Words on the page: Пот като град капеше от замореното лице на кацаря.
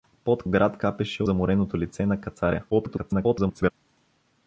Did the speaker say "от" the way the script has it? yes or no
no